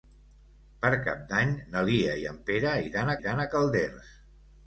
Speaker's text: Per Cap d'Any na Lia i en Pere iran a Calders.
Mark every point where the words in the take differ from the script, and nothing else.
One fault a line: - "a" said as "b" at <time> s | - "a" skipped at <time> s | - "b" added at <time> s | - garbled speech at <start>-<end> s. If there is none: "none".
- "iran" added at 3.2 s